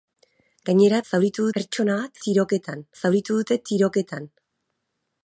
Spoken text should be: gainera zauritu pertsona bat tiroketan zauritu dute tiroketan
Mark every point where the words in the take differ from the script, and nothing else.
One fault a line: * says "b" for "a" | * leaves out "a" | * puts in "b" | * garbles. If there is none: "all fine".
all fine